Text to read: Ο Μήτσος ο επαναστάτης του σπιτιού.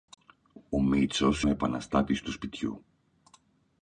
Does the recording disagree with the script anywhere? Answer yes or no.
no